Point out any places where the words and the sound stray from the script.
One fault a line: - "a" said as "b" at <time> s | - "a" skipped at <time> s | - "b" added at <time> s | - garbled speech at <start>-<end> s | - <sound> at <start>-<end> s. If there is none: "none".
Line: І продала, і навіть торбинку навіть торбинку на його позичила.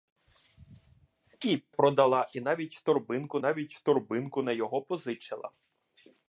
none